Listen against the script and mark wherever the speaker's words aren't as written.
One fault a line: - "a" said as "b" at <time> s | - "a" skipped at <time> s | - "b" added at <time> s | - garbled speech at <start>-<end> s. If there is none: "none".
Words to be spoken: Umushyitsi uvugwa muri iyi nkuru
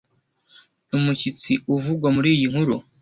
none